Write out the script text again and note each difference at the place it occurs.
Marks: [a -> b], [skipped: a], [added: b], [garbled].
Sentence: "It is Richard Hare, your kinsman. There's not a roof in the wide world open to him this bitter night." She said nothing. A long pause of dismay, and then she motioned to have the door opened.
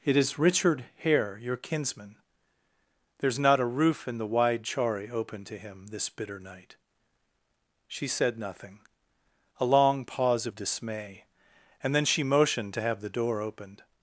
"It is Richard Hare, your kinsman. There's not a roof in the wide [world -> chari] open to him this bitter night." She said nothing. A long pause of dismay, and then she motioned to have the door opened.